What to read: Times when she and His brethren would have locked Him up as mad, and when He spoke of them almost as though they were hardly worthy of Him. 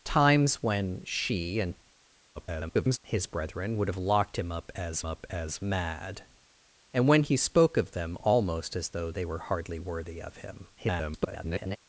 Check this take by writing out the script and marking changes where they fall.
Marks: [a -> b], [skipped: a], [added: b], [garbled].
Times when she and [garbled] His brethren would have locked Him up as [added: up as] mad, and when He spoke of them almost as though they were hardly worthy of Him. [garbled]